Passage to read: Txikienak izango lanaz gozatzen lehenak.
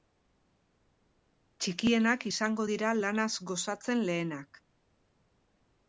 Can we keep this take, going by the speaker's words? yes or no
no